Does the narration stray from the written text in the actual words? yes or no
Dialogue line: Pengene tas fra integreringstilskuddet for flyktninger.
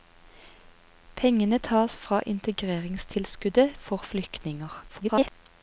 yes